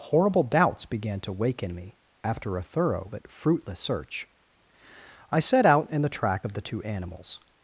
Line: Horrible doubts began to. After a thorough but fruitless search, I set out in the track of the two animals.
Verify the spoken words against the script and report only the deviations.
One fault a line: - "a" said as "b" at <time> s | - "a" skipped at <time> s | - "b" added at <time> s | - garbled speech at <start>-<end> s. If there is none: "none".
- "wake in me" added at 1.3 s